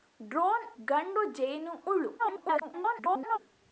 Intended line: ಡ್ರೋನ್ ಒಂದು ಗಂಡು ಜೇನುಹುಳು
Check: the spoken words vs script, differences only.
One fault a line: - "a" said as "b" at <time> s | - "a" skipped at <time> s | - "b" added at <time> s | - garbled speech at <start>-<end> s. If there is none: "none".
- "ಒಂದು" skipped at 0.7 s
- garbled speech at 2.2-3.4 s